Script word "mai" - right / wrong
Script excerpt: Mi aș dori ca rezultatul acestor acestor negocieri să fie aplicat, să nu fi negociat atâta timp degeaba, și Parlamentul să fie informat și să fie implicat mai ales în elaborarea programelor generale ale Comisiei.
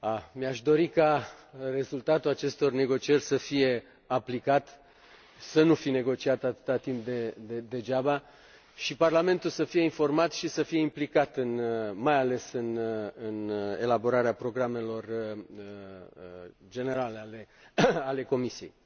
right